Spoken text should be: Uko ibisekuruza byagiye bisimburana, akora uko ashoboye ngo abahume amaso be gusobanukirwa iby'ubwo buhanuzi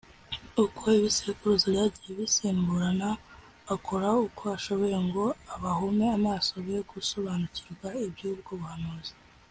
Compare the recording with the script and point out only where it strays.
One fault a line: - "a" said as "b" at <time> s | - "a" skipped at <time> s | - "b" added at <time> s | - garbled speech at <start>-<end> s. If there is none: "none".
none